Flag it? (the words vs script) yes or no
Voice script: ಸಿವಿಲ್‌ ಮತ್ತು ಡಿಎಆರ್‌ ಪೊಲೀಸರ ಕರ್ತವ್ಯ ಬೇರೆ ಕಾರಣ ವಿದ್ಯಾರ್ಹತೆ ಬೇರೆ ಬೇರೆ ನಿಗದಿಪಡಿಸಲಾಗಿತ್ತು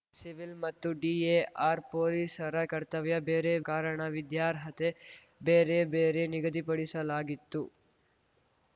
no